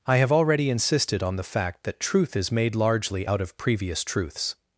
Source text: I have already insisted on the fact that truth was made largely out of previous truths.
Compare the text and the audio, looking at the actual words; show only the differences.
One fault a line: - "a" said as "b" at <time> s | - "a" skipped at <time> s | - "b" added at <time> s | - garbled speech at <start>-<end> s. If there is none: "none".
- "was" said as "is" at 2.4 s